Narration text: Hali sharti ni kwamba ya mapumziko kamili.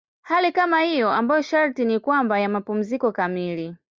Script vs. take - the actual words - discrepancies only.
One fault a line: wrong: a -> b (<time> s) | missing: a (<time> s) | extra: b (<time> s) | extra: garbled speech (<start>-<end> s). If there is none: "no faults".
extra: kama hiyo ambayo (0.5 s)